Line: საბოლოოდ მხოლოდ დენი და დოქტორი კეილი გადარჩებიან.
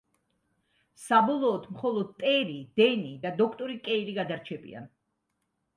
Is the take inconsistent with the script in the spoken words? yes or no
yes